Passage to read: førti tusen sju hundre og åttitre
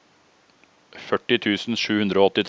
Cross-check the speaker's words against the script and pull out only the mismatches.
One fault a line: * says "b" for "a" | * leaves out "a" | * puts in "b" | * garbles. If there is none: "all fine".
all fine